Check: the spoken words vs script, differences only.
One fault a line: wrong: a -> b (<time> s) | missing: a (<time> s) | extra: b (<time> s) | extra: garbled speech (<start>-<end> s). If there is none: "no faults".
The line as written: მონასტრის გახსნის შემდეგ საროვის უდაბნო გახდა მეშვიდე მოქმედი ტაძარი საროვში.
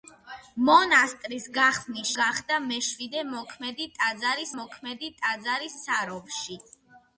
wrong: შემდეგ საროვის უდაბნო გახდა მეშვიდე -> გახდა მეშვიდე მოქმედი ტაძარი (2.2 s)